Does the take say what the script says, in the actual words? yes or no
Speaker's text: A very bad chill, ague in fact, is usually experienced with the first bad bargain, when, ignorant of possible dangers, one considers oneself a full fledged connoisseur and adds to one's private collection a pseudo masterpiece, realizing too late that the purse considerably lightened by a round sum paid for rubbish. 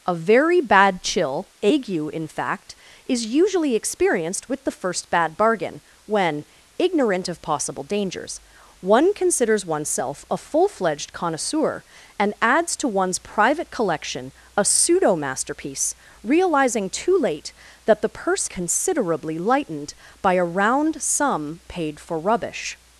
yes